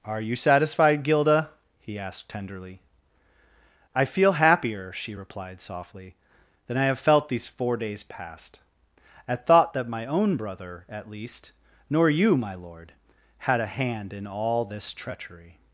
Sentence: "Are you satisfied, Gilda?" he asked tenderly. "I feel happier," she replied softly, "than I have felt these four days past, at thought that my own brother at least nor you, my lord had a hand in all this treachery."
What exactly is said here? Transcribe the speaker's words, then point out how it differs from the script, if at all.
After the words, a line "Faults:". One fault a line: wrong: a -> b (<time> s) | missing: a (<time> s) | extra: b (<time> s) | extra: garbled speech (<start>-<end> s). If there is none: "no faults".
"Are you satisfied, Gilda?" he asked tenderly. "I feel happier," she replied softly, "than I have felt these four days past, at thought that my own brother at least nor you, my lord had a hand in all this treachery."
Faults:
no faults